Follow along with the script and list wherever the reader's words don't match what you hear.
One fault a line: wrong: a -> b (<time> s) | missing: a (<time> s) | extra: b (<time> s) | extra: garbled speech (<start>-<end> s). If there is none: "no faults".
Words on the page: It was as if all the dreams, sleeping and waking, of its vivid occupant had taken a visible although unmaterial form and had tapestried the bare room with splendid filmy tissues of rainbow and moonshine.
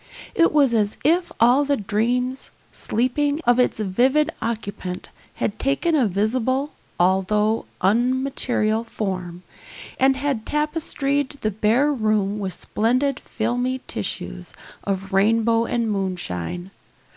missing: and waking (3.4 s)